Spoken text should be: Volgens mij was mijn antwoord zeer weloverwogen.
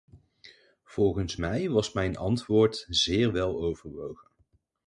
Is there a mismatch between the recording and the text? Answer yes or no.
no